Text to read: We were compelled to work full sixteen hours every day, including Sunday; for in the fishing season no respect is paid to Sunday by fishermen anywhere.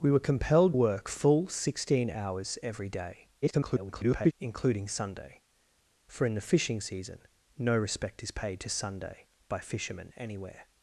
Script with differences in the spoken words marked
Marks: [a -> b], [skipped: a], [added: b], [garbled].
We were compelled [skipped: to] work full sixteen hours every day, [garbled] including Sunday; for in the fishing season no respect is paid to Sunday by fishermen anywhere.